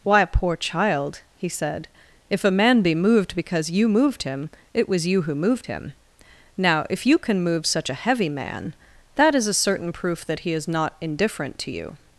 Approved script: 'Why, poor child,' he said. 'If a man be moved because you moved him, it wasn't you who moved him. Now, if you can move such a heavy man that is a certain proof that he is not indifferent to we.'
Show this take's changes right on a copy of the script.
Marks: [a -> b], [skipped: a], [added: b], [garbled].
'Why, poor child,' he said. 'If a man be moved because you moved him, it [wasn't -> was] you who moved him. Now, if you can move such a heavy man that is a certain proof that he is not indifferent to [we.' -> you]